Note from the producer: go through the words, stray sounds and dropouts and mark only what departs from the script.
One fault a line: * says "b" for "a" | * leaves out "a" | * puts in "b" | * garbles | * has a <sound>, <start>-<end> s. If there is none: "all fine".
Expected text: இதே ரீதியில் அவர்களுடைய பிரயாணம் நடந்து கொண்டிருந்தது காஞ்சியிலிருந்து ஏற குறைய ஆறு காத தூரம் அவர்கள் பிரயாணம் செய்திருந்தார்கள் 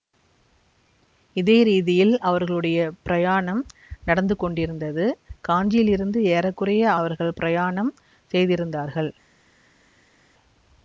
* leaves out "ஆறு காத தூரம்"